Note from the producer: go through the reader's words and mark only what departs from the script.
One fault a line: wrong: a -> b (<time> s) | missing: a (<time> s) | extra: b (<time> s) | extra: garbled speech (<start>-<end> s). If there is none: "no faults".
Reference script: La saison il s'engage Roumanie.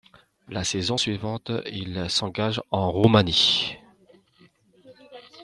extra: suivante (0.9 s)
extra: en (2.7 s)